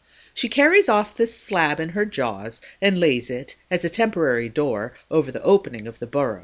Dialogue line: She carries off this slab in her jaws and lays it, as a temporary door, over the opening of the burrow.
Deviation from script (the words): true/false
false